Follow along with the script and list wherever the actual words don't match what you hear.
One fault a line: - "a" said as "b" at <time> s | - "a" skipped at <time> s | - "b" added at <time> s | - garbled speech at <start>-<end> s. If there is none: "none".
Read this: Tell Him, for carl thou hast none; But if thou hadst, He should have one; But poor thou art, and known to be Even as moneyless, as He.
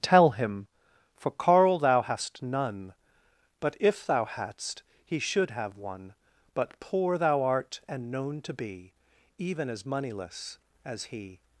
none